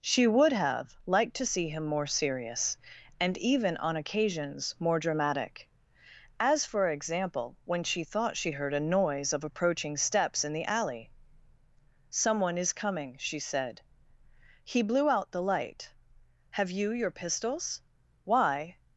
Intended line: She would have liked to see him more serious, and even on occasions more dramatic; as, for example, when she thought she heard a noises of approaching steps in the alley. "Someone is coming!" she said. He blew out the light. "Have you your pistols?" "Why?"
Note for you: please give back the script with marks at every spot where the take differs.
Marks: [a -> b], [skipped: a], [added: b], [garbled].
She would have liked to see him more serious, and even on occasions more dramatic; as, for example, when she thought she heard a [noises -> noise] of approaching steps in the alley. "Someone is coming!" she said. He blew out the light. "Have you your pistols?" "Why?"